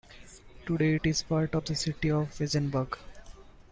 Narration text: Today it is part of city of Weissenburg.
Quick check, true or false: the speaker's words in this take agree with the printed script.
false